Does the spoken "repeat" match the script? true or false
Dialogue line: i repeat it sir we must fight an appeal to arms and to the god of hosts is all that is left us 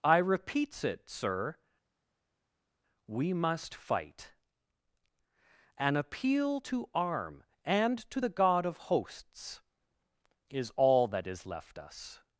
false